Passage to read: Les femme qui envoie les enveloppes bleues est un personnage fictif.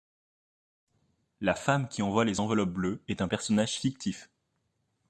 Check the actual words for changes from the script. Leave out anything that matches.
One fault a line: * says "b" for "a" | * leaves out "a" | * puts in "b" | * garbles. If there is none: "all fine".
* says "La" for "Les"